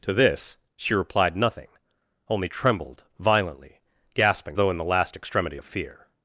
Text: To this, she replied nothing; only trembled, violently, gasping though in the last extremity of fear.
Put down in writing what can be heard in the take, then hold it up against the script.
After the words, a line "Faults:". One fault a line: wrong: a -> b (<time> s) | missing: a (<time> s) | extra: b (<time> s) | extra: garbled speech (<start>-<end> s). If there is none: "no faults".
To this, she replied nothing; only trembled, violently, gasping though in the last extremity of fear.
Faults:
no faults